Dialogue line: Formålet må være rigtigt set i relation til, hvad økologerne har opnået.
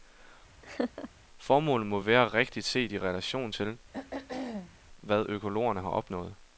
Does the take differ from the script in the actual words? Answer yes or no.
no